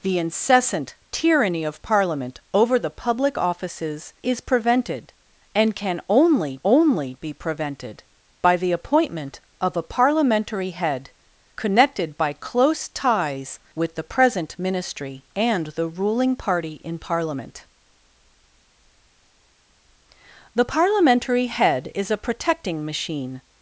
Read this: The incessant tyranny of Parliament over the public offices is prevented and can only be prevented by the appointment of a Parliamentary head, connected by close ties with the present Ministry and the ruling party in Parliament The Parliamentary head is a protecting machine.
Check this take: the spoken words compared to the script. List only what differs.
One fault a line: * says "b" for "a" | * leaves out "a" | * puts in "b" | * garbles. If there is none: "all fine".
* puts in "only"